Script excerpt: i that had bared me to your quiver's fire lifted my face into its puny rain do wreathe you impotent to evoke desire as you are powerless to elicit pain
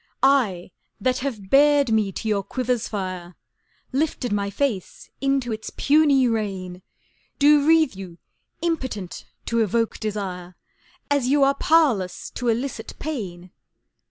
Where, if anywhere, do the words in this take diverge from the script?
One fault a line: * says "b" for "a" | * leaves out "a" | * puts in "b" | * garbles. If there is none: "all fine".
* says "have" for "had"